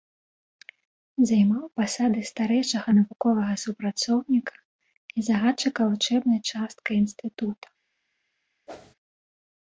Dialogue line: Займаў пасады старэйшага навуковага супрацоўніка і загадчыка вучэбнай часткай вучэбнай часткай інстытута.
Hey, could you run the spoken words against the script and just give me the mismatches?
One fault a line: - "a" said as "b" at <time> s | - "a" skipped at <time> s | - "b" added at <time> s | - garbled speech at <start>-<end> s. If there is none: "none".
- "вучэбнай часткай" skipped at 7.0 s